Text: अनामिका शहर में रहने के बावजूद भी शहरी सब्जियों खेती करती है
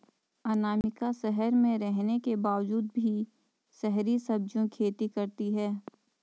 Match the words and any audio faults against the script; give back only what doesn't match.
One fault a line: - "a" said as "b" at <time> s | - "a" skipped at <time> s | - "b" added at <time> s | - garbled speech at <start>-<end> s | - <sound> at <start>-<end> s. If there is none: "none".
- dropout at 0.8-0.8 s